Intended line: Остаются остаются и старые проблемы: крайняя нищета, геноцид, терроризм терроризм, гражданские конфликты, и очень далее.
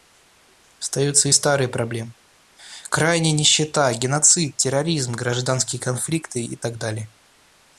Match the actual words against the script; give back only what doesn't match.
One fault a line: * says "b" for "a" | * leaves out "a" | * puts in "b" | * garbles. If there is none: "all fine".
* leaves out "остаются"
* leaves out "терроризм"
* says "так" for "очень"